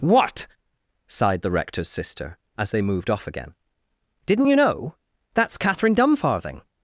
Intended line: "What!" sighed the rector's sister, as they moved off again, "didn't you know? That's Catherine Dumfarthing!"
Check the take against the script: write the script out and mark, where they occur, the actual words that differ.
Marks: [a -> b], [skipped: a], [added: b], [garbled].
"What!" sighed the rector's sister, as they moved off again, "didn't you know? That's Catherine Dumfarthing!"